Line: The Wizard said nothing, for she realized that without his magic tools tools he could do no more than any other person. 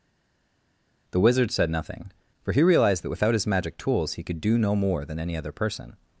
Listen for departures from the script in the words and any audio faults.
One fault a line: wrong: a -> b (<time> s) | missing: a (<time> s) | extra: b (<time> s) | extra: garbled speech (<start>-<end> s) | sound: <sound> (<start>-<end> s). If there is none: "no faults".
wrong: she -> he (2.5 s)
missing: tools (4.1 s)